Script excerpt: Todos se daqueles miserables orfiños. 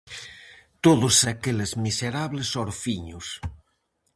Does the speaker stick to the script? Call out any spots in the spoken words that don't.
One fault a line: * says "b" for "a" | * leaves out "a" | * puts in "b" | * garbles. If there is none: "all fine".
all fine